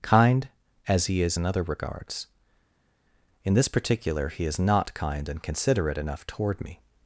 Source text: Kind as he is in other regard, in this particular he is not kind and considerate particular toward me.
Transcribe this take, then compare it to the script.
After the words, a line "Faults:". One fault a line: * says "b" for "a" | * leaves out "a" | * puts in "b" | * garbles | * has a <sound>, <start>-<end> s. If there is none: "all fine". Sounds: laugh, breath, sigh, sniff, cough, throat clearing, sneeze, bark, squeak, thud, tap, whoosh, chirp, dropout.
Kind as he is in other regards, in this particular he is not kind and considerate enough toward me.
Faults:
* says "regards" for "regard"
* says "enough" for "particular"